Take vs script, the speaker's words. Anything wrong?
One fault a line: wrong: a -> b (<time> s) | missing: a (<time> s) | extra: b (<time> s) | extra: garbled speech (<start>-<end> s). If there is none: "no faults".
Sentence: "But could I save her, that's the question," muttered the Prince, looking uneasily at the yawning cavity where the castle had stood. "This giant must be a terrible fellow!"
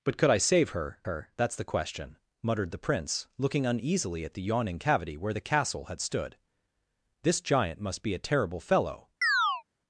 extra: her (1.0 s)